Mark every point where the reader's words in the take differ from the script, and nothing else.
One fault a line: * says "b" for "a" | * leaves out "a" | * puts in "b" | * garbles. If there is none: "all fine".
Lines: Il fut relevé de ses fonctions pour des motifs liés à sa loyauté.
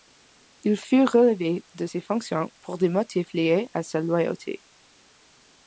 all fine